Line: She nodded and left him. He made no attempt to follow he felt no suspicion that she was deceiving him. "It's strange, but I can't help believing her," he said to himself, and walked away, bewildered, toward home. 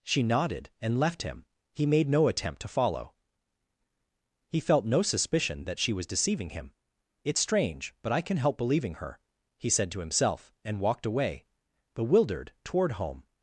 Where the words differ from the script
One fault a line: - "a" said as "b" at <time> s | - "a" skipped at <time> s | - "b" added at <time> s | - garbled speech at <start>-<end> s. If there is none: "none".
- "can't" said as "can" at 8.2 s